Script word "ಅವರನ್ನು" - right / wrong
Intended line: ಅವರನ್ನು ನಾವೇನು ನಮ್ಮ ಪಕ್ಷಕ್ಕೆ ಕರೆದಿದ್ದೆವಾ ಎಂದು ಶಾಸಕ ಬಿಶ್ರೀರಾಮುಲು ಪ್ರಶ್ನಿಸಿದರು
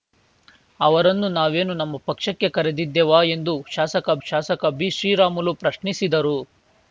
right